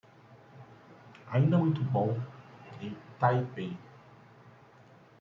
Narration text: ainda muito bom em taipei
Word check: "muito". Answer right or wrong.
right